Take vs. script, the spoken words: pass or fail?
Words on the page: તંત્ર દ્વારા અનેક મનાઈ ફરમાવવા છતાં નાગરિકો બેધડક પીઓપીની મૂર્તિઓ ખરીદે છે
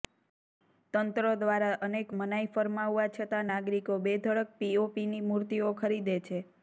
pass